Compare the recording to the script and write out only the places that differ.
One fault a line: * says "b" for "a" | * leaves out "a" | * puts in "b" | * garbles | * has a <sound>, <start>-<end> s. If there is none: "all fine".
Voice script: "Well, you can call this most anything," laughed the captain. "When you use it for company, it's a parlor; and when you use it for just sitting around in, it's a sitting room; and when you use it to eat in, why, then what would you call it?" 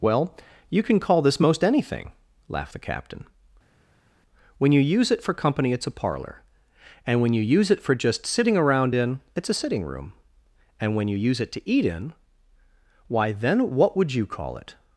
all fine